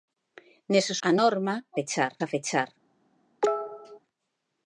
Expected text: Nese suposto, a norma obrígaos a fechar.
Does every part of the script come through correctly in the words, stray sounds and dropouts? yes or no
no